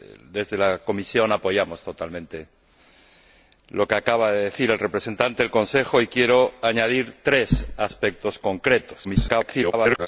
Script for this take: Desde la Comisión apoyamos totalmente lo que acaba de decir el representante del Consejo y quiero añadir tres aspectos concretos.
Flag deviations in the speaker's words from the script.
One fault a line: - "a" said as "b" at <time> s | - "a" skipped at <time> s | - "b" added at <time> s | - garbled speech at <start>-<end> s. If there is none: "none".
- garbled speech at 9.0-10.1 s